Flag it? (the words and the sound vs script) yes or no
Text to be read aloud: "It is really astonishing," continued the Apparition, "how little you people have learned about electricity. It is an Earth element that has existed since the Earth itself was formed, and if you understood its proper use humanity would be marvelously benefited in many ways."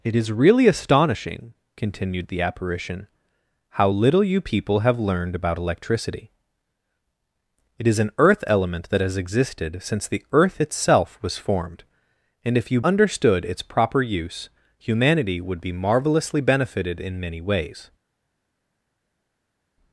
no